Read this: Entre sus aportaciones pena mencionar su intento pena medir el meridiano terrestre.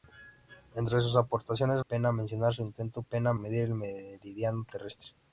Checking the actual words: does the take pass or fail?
pass